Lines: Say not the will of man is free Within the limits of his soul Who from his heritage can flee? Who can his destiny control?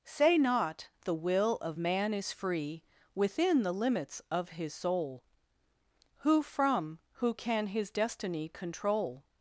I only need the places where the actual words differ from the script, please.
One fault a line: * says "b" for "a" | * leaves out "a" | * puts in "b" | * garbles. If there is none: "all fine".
* leaves out "his heritage can flee"